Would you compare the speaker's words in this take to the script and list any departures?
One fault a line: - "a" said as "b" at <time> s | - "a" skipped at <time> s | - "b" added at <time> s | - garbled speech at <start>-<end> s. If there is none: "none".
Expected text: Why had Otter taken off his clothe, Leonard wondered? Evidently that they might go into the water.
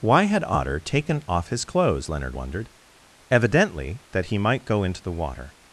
- "clothe" said as "clothes" at 1.6 s
- "they" said as "he" at 4.3 s